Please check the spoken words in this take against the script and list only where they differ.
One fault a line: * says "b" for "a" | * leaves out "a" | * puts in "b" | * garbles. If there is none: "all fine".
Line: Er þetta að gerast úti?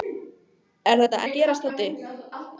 all fine